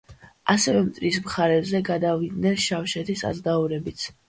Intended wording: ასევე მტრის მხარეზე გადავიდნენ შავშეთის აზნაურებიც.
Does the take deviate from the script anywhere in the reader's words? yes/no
no